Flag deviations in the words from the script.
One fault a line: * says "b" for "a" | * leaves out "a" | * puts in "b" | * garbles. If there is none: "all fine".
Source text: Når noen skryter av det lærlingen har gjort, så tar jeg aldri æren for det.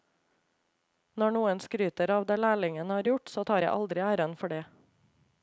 all fine